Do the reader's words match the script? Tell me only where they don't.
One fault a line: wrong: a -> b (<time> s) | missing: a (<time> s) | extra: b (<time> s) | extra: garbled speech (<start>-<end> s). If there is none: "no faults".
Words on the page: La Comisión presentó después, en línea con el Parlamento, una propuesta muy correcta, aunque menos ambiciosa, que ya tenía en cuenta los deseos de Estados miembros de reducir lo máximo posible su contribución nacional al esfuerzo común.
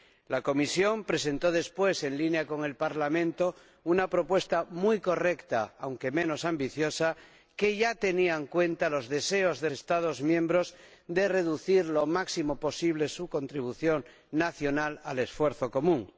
no faults